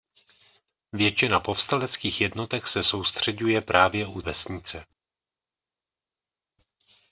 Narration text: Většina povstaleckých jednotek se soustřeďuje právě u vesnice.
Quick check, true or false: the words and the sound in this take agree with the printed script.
true